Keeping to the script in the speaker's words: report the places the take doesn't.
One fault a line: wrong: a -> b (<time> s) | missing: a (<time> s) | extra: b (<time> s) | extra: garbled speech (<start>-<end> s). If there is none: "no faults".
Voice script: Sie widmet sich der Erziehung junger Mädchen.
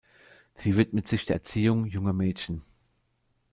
no faults